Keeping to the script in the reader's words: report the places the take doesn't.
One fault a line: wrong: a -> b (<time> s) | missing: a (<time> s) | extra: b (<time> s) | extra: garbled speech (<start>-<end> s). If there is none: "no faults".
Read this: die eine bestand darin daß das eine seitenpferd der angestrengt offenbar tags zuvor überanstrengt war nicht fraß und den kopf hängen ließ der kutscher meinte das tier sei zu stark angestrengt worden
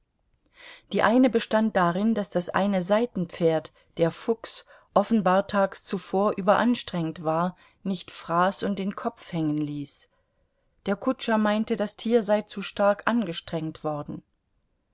wrong: angestrengt -> fuchs (4.1 s)